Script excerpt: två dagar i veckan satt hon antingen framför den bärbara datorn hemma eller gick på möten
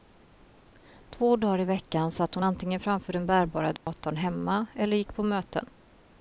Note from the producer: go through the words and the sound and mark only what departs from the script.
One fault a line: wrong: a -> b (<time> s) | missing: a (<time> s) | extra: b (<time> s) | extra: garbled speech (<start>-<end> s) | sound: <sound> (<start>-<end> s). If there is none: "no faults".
sound: dropout (3.8-3.9 s)